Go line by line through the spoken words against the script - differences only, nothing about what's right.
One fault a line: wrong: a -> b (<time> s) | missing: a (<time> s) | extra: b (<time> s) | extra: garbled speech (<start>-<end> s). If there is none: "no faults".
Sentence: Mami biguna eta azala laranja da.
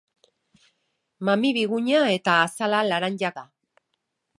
no faults